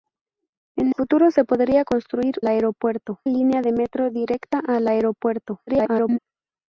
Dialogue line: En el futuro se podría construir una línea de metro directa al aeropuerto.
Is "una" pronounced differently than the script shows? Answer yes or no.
yes